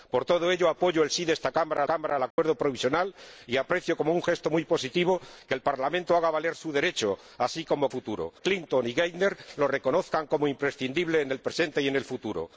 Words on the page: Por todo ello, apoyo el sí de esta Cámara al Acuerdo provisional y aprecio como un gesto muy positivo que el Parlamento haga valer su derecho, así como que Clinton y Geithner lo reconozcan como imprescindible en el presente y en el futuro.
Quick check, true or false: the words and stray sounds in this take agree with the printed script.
false